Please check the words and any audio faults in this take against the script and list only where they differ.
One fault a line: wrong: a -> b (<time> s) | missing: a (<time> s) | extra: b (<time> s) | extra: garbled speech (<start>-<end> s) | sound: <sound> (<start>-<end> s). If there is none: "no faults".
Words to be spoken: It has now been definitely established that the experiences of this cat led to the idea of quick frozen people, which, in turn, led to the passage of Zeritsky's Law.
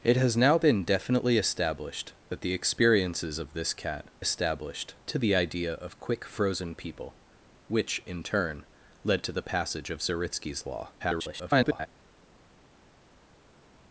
wrong: led -> established (4.2 s)
extra: garbled speech (11.0-11.9 s)